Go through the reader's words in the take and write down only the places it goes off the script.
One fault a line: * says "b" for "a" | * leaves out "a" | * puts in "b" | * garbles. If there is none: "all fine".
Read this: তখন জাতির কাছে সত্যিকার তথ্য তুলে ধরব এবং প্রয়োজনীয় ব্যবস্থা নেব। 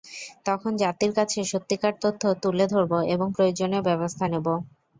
all fine